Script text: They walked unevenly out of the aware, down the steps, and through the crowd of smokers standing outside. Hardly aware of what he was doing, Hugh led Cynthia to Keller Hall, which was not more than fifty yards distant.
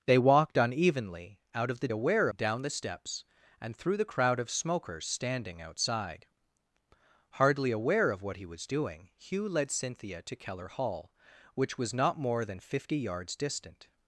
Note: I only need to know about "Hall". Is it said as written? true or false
true